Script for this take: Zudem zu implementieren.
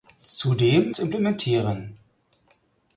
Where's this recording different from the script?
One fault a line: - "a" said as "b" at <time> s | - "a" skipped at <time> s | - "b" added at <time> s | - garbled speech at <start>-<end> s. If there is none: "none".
none